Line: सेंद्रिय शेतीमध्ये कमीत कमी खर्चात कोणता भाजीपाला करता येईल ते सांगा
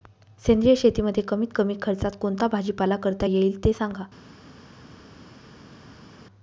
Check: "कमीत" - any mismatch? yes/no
no